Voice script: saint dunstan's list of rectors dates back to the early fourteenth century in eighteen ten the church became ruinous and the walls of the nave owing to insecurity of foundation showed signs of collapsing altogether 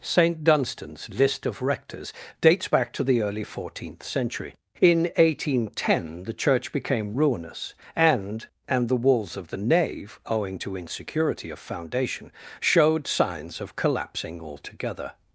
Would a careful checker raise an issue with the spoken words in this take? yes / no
yes